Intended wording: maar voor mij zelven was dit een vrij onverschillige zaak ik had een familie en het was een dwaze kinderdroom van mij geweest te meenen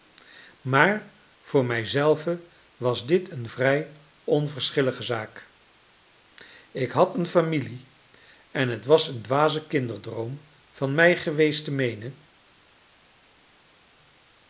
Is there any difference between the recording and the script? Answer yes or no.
no